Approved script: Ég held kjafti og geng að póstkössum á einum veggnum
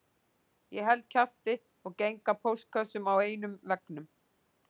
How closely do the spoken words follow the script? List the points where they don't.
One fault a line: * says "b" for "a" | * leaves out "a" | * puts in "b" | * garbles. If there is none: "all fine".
all fine